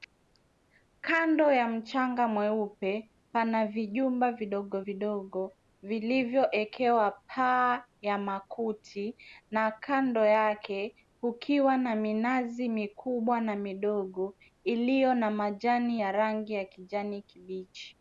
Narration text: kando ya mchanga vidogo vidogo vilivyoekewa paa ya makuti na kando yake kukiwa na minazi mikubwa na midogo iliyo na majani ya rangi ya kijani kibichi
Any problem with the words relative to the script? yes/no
yes